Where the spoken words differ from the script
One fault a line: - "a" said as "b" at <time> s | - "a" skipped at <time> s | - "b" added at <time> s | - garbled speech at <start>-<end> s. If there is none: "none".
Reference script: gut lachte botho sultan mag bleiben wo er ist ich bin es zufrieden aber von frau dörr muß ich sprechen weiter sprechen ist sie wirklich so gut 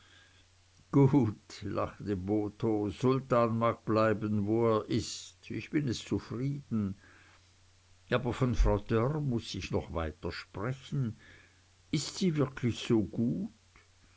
- "sprechen" said as "noch" at 9.7 s